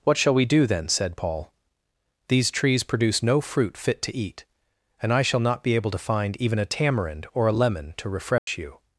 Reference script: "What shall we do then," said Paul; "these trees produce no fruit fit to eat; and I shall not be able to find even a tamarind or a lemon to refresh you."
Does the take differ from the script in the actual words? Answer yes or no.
no